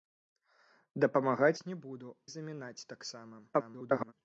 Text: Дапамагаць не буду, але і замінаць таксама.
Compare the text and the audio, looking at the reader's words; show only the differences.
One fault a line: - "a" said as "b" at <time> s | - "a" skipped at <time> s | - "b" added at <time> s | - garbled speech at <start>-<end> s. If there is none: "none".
- "але" skipped at 2.1 s
- garbled speech at 3.5-4.1 s